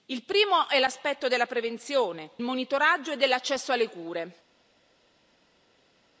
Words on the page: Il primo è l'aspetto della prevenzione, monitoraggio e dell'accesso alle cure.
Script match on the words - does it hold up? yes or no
yes